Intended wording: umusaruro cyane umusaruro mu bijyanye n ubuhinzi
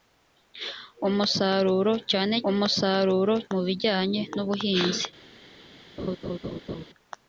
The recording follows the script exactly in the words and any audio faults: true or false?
false